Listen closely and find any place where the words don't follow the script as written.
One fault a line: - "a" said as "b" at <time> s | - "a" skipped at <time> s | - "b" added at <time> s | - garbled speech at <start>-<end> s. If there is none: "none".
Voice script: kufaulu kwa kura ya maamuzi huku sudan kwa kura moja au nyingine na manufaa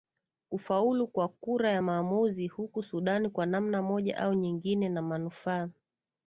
- "kura" said as "namna" at 3.4 s